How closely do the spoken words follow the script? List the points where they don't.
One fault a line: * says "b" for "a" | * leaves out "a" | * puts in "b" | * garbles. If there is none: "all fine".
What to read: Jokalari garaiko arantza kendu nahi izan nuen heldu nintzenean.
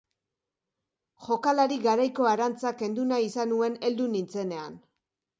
all fine